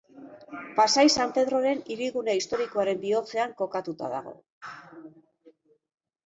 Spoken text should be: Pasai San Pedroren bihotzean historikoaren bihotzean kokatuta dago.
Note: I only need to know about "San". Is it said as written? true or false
true